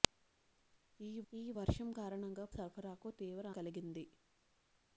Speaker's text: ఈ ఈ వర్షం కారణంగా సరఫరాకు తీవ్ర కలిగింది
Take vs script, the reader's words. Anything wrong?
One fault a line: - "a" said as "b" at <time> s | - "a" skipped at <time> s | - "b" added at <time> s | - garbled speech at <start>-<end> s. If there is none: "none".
none